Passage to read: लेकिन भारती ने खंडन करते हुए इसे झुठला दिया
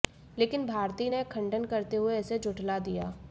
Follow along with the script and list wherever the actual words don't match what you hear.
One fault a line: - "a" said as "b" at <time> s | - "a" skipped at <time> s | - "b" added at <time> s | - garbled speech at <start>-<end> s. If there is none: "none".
none